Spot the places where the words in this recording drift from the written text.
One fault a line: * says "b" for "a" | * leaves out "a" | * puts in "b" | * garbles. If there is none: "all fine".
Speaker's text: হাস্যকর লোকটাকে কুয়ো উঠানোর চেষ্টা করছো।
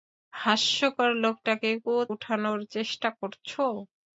all fine